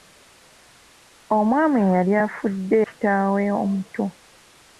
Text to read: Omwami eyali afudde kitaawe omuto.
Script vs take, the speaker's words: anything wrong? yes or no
no